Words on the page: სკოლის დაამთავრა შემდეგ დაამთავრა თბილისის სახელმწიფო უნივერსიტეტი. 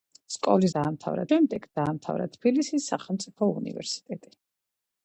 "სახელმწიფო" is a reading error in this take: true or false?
false